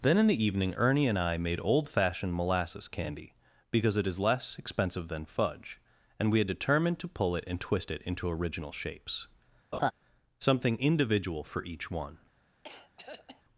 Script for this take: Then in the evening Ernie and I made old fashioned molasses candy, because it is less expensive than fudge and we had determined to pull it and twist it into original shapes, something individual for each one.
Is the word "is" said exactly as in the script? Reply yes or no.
yes